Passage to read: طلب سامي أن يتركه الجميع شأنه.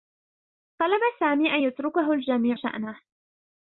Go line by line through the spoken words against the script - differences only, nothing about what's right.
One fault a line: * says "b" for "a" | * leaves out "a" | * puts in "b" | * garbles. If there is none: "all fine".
all fine